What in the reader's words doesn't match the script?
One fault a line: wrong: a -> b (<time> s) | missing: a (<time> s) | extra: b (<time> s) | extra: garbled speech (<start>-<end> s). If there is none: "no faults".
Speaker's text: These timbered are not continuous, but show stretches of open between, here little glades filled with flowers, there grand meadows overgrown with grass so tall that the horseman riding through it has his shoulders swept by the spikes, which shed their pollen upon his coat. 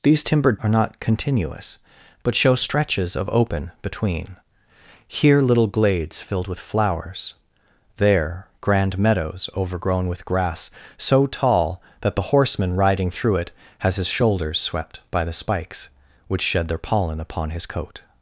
no faults